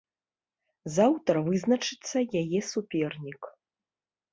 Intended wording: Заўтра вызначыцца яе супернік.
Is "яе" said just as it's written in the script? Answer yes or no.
yes